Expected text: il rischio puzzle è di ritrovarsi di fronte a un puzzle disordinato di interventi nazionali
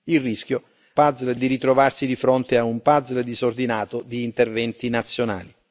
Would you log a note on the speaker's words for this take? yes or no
no